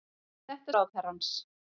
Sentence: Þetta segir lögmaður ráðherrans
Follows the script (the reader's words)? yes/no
no